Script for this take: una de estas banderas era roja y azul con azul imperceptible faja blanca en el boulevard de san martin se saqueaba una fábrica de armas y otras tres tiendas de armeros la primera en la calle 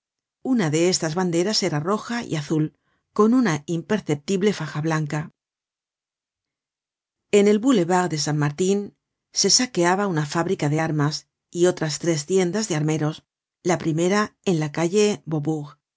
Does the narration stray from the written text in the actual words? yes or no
yes